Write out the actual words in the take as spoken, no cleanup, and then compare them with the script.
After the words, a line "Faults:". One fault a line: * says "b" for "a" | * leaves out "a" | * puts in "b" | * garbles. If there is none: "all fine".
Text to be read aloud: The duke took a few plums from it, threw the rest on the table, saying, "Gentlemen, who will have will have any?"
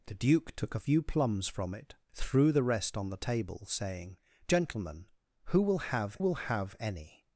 The duke took a few plums from it, threw the rest on the table, saying, "Gentlemen, who will have will have any?"
Faults:
all fine